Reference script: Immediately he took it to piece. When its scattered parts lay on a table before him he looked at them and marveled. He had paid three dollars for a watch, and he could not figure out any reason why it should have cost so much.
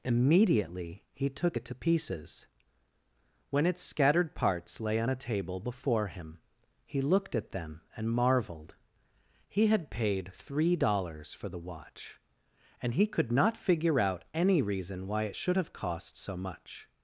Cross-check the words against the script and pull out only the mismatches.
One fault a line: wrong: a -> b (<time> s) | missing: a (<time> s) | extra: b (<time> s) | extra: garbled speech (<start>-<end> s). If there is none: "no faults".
wrong: piece -> pieces (1.7 s)
wrong: a -> the (11.5 s)